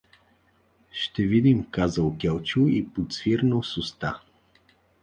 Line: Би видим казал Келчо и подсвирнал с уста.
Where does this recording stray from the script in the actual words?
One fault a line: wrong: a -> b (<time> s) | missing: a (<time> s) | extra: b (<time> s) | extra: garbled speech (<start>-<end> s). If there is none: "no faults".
wrong: Би -> Ще (0.9 s)